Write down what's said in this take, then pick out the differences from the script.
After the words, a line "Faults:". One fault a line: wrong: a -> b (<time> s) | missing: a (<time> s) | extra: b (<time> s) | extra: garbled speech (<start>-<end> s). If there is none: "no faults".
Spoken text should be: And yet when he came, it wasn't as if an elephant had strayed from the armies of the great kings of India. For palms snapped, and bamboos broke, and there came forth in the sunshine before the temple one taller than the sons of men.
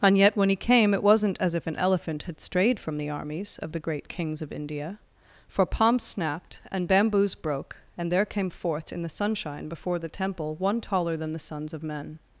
And yet when he came, it wasn't as if an elephant had strayed from the armies of the great kings of India. For palms snapped, and bamboos broke, and there came forth in the sunshine before the temple one taller than the sons of men.
Faults:
no faults